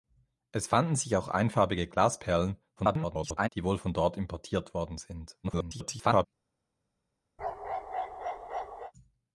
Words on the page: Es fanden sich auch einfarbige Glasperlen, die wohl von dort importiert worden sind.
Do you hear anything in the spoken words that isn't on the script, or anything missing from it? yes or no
yes